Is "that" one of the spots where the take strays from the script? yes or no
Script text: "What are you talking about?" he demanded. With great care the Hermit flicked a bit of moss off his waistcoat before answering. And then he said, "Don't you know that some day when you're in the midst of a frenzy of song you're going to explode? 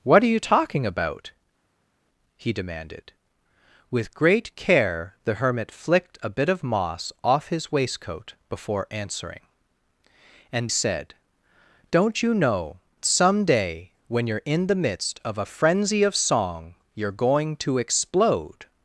yes